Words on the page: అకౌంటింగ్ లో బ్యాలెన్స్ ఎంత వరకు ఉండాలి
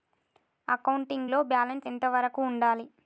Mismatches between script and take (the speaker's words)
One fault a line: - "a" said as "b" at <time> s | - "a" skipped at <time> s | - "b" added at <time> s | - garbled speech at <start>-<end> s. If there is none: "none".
none